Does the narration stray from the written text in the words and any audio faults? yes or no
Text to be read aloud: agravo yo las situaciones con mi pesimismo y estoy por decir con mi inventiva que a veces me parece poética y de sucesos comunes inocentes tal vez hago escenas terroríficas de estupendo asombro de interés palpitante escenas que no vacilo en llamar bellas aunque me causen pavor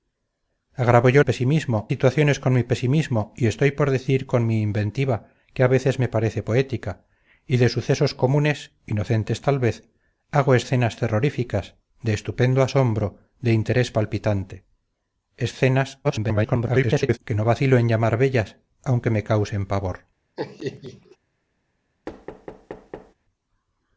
yes